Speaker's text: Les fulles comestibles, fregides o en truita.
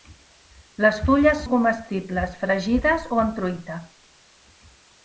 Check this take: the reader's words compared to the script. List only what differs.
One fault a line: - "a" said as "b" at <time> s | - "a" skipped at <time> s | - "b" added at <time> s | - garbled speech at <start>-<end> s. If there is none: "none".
none